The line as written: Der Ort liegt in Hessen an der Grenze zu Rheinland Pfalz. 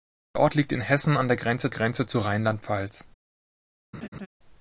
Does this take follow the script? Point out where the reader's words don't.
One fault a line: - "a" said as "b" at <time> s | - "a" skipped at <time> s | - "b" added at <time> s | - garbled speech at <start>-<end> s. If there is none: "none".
- "Grenze" added at 1.7 s